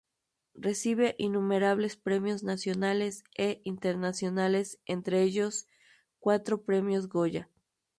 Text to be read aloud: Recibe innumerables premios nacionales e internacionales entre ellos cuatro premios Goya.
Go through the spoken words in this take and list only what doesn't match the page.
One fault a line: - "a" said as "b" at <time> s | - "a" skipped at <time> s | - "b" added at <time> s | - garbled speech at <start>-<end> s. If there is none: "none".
none